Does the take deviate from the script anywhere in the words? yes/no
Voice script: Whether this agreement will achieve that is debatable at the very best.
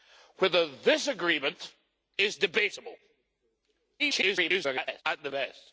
yes